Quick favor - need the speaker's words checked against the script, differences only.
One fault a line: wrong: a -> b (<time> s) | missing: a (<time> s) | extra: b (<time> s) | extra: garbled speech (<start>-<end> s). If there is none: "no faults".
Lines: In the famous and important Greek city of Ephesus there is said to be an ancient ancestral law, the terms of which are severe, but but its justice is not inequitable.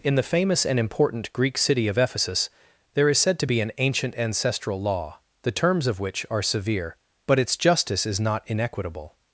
missing: but (7.4 s)